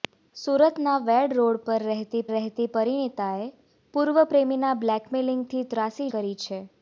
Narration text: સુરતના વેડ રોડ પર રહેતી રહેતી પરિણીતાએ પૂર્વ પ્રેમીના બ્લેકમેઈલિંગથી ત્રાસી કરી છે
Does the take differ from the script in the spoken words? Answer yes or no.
no